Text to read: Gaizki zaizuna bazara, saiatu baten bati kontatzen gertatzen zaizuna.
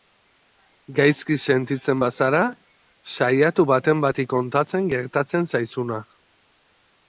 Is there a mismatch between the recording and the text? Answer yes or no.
yes